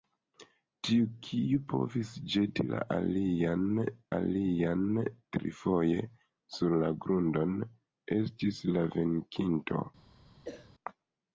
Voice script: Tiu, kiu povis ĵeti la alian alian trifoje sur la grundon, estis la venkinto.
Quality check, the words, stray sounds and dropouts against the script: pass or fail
fail